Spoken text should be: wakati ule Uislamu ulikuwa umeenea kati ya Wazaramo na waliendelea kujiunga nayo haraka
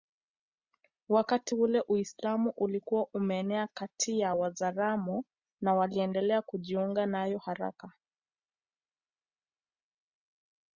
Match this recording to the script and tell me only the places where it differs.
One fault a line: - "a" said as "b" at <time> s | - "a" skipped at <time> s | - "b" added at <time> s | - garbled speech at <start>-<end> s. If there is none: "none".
none